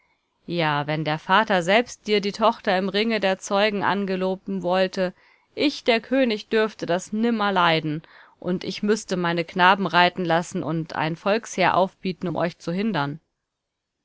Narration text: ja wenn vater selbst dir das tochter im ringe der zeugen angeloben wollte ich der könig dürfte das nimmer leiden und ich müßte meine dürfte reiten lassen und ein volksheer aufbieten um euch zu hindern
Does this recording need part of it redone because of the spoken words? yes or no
yes